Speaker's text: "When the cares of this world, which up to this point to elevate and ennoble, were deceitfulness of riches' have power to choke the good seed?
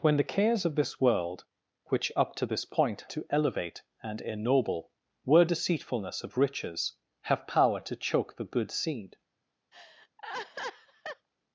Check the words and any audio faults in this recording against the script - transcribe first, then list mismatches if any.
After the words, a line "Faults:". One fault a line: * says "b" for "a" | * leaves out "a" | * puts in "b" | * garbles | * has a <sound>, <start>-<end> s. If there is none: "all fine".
"When the cares of this world, which up to this point to elevate and ennoble, were deceitfulness of riches' have power to choke the good seed?
Faults:
* has a laugh, 9.7-11.3 s